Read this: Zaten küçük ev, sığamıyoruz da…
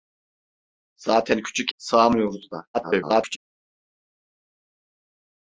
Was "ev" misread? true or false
true